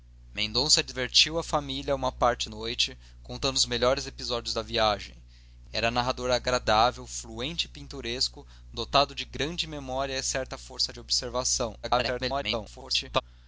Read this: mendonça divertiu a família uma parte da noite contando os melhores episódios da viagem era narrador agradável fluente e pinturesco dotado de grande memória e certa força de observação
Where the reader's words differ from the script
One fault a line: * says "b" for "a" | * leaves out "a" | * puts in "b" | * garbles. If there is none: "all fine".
* leaves out "da"
* garbles